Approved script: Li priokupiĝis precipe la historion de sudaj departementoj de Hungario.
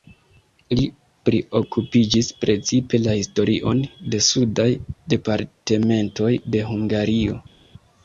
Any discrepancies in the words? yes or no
no